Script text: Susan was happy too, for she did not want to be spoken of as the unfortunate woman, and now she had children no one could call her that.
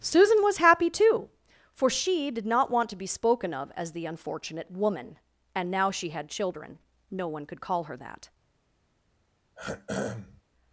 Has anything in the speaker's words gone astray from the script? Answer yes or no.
no